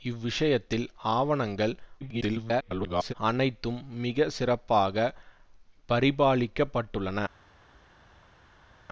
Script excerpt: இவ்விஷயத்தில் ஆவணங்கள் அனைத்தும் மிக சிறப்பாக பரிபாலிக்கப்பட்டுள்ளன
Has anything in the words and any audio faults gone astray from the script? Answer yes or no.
yes